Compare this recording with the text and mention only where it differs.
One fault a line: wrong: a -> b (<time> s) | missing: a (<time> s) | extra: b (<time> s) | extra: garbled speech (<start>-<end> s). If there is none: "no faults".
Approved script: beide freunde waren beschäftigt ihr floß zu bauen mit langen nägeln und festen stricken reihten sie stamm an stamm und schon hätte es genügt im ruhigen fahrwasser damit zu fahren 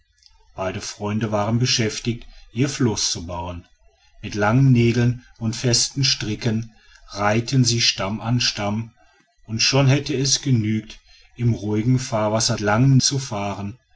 wrong: damit -> langen (12.6 s)